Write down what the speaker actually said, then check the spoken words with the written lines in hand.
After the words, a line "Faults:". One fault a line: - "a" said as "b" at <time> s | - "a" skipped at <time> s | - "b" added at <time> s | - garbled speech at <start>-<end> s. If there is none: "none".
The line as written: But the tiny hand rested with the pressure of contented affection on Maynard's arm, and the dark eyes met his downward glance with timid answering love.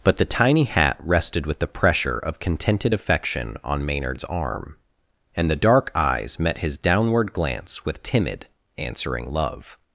But the tiny hat rested with the pressure of contented affection on Maynard's arm, and the dark eyes met his downward glance with timid answering love.
Faults:
- "hand" said as "hat" at 0.6 s